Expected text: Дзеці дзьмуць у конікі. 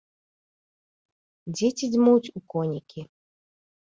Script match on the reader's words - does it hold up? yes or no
yes